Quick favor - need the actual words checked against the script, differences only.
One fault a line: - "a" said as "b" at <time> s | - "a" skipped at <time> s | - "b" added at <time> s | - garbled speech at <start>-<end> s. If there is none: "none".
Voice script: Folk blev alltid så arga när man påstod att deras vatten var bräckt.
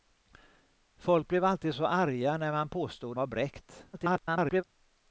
- "att deras vatten" skipped at 3.2 s
- garbled speech at 3.9-4.6 s